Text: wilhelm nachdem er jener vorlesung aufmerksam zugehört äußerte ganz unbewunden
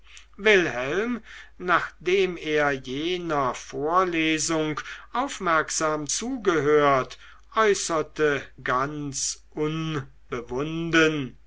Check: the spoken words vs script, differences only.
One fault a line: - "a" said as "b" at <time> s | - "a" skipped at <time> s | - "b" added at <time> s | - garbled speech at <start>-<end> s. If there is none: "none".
none